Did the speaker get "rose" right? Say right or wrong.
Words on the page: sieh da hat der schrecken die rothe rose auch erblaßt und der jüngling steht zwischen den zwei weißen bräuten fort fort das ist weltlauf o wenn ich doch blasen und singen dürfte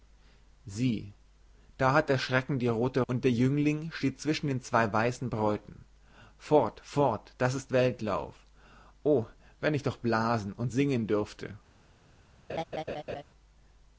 wrong